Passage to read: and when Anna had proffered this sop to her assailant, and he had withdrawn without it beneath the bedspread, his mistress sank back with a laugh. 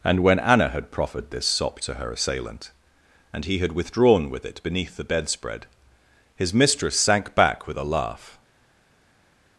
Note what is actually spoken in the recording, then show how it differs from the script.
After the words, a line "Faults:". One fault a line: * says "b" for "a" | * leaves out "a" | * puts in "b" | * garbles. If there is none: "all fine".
and when Anna had proffered this sop to her assailant, and he had withdrawn with it beneath the bedspread, his mistress sank back with a laugh.
Faults:
* says "with" for "without"